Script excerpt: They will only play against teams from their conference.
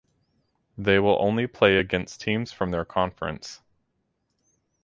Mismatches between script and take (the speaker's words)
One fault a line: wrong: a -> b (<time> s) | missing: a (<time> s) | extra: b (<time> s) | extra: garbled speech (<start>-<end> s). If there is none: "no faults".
no faults